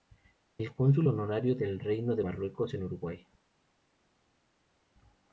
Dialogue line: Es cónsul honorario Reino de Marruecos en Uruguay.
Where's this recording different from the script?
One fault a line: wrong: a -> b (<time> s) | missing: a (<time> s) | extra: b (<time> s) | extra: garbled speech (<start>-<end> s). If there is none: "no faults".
extra: del (1.6 s)